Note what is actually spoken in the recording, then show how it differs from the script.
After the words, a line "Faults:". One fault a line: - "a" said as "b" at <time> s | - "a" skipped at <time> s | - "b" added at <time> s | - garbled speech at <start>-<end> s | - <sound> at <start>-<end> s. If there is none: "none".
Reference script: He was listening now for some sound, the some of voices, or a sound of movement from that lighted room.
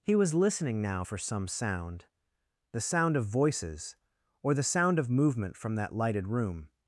He was listening now for some sound, the sound of voices, or the sound of movement from that lighted room.
Faults:
- "some" said as "sound" at 2.8 s
- "a" said as "the" at 4.5 s